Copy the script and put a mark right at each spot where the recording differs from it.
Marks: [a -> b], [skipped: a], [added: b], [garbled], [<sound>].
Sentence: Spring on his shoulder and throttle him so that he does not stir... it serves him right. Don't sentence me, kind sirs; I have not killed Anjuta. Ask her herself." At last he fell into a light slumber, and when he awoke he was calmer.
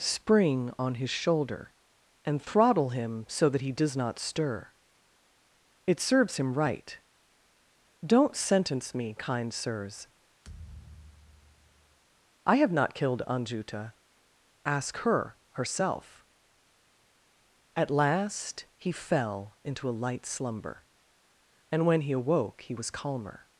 Spring on his shoulder and throttle him so that he does not stir... it serves him right. Don't sentence me, kind sirs; [thud] I have not killed Anjuta. Ask her herself." At last he fell into a light slumber, and when he awoke he was calmer.